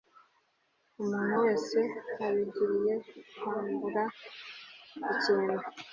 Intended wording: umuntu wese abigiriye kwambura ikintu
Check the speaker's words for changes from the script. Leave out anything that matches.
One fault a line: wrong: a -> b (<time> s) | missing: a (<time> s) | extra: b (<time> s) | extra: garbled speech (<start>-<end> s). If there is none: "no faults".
no faults